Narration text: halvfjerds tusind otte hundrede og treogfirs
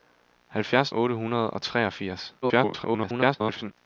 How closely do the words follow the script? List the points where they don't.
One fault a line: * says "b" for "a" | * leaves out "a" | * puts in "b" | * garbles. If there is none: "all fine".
* leaves out "tusind"
* garbles